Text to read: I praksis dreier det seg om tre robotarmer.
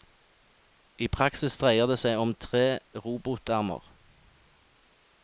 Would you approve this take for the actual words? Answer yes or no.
yes